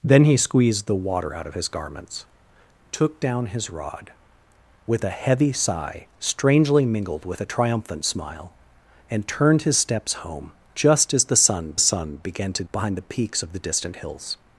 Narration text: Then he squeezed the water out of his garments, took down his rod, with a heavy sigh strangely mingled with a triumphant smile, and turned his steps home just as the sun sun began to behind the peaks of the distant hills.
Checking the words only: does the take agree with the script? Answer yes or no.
yes